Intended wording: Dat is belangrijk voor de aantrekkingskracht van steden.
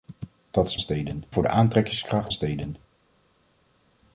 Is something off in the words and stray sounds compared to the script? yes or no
yes